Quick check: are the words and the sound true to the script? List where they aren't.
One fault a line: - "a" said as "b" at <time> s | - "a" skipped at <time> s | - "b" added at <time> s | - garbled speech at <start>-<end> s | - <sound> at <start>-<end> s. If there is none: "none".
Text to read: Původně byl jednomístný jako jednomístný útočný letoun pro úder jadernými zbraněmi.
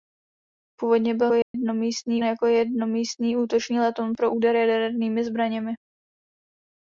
- dropout at 1.4-1.5 s